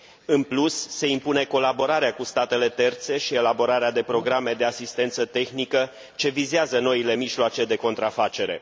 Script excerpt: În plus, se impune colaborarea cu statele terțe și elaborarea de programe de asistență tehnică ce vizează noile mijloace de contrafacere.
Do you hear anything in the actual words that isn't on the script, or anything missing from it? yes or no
no